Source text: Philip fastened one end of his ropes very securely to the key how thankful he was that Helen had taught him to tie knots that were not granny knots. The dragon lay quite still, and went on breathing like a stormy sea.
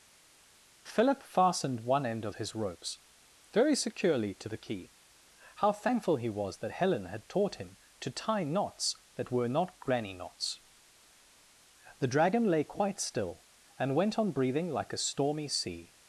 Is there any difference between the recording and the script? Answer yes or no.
no